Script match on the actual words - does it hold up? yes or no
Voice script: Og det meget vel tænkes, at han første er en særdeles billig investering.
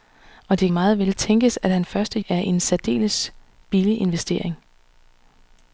yes